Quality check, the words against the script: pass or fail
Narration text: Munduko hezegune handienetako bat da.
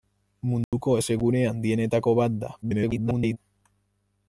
fail